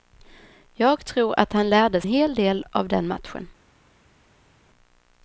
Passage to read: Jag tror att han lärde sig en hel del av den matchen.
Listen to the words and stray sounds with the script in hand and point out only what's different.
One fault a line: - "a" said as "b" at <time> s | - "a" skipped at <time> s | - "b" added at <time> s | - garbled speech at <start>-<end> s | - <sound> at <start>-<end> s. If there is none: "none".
- "sig en" skipped at 2.0 s